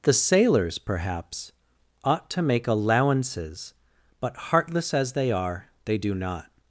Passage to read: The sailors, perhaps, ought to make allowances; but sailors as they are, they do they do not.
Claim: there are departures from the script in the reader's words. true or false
true